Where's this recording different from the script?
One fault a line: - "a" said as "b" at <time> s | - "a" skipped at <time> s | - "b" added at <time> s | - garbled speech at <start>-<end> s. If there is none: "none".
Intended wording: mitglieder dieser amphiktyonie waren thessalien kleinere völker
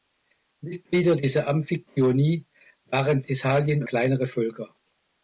none